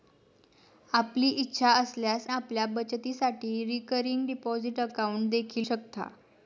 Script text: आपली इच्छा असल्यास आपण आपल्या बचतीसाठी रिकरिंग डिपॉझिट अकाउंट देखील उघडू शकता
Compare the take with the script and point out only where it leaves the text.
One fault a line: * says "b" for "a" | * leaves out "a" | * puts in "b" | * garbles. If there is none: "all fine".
* leaves out "आपण"
* leaves out "उघडू"